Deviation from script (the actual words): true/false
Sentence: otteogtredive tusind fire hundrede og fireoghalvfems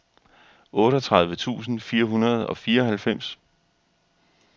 false